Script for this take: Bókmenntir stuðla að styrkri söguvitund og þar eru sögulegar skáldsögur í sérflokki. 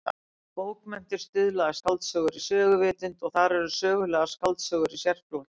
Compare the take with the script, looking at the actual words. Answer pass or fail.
fail